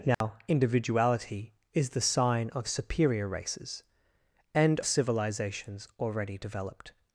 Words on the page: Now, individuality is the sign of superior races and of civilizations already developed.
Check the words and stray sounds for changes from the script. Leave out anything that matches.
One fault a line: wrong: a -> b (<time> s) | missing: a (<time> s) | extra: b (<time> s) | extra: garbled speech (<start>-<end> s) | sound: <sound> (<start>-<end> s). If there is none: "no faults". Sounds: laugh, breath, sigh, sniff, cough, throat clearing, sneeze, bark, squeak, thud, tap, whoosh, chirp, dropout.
sound: dropout (0.1-0.2 s)
missing: of (4.8 s)